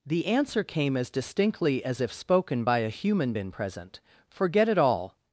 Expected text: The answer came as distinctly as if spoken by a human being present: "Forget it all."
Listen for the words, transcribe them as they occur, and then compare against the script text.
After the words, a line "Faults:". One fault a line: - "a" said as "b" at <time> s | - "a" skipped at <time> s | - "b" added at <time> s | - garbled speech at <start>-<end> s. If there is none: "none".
The answer came as distinctly as if spoken by a human been present: "Forget it all."
Faults:
- "being" said as "been" at 3.3 s